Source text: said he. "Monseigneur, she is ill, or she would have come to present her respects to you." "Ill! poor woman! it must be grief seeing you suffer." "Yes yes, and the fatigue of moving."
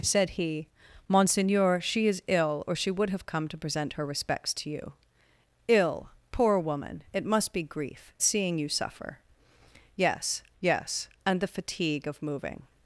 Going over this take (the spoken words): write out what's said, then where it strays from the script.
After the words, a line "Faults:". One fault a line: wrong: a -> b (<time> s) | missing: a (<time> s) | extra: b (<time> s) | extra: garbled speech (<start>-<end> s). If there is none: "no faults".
said he. "Monseigneur, she is ill, or she would have come to present her respects to you." "Ill! poor woman! it must be grief seeing you suffer." "Yes yes, and the fatigue of moving."
Faults:
no faults